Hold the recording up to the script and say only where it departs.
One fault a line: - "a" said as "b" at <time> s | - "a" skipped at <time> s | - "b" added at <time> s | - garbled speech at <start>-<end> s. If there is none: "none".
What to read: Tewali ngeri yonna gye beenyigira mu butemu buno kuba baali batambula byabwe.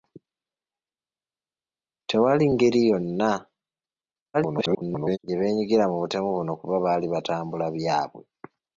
- garbled speech at 4.3-5.2 s